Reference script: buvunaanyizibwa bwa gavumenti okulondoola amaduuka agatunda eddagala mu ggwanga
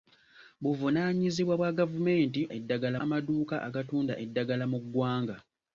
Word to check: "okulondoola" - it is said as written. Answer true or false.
false